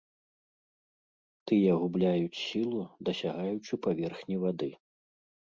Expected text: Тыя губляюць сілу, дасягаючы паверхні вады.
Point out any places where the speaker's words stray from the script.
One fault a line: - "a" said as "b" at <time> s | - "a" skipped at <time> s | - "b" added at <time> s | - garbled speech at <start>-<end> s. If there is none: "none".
none